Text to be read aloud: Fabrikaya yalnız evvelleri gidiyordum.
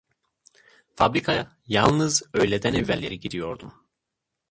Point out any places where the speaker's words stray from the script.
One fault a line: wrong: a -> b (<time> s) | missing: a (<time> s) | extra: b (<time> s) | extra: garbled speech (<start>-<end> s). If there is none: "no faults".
extra: öğleden (2.3 s)